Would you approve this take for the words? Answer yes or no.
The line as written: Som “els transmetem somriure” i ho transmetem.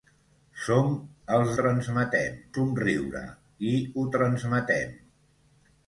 yes